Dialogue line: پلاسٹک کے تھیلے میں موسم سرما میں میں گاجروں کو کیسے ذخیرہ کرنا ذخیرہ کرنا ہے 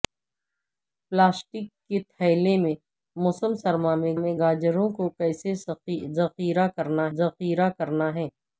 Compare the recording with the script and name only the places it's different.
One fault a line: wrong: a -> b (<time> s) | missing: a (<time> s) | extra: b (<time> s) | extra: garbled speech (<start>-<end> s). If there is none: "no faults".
no faults